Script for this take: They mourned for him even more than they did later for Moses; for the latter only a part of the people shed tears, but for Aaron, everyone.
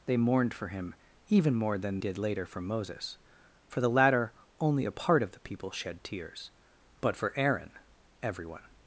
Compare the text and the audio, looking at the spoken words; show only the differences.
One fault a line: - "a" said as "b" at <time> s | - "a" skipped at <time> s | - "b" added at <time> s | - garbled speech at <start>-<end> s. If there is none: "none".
- "they" skipped at 2.0 s